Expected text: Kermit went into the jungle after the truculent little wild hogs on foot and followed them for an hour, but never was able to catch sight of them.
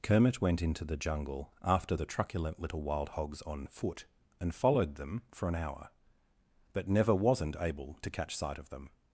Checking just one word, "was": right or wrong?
wrong